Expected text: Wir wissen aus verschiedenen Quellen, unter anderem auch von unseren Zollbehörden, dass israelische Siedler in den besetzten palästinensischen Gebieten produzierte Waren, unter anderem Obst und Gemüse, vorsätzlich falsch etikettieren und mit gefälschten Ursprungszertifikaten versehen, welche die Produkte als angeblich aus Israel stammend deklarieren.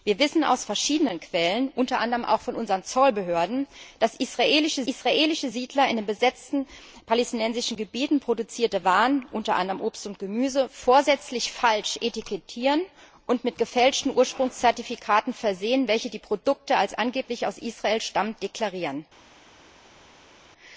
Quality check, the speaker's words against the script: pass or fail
fail